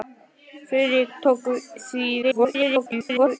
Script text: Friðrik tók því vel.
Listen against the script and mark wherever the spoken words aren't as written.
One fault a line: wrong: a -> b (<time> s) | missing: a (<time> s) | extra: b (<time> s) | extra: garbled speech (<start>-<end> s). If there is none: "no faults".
extra: garbled speech (2.2-3.4 s)